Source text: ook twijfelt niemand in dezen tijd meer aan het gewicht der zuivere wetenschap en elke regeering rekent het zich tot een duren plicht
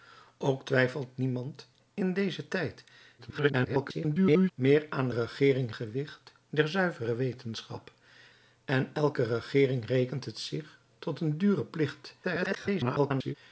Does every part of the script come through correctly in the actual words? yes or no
no